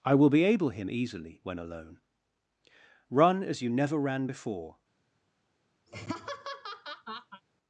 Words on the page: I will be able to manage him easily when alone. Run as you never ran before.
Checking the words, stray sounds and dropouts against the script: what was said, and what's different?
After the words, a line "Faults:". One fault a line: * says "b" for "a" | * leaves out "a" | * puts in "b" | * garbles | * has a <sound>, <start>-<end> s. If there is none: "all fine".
I will be able him easily when alone. Run as you never ran before.
Faults:
* leaves out "to manage"
* has a laugh, 5.9-7.4 s